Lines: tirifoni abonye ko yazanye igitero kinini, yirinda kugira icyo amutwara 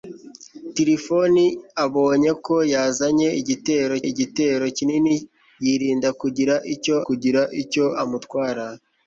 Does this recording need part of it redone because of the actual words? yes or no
yes